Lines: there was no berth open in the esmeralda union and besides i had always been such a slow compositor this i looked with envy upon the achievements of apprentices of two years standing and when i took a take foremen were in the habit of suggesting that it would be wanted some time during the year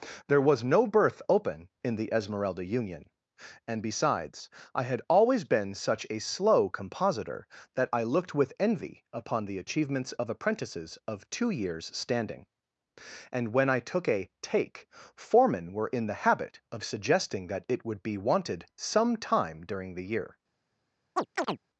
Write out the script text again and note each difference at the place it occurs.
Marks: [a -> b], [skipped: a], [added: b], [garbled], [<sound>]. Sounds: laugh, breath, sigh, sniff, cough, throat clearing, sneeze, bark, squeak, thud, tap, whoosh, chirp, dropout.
there was no berth open in the esmeralda union and besides i had always been such a slow compositor [this -> that] i looked with envy upon the achievements of apprentices of two years standing and when i took a take foremen were in the habit of suggesting that it would be wanted some time during the year [chirp]